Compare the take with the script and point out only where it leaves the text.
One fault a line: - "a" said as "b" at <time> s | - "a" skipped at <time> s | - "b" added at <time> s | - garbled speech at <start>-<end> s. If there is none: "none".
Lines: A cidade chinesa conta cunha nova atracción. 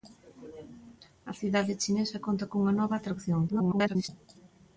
- garbled speech at 3.5-4.1 s